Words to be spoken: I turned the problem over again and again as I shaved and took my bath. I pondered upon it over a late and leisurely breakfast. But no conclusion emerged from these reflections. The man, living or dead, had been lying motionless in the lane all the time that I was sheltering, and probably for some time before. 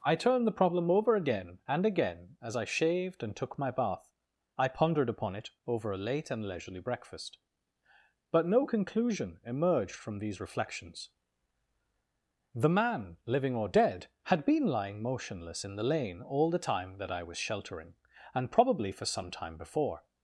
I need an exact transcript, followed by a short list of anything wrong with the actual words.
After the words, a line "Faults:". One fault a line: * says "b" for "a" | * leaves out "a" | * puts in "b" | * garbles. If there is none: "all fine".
I turned the problem over again and again as I shaved and took my bath. I pondered upon it over a late and leisurely breakfast. But no conclusion emerged from these reflections. The man, living or dead, had been lying motionless in the lane all the time that I was sheltering, and probably for some time before.
Faults:
all fine